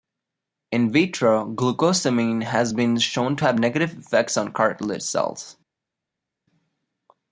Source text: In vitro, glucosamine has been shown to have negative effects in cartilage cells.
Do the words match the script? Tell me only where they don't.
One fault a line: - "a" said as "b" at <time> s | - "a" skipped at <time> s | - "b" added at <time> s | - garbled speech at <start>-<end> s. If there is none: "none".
- "in" said as "on" at 4.3 s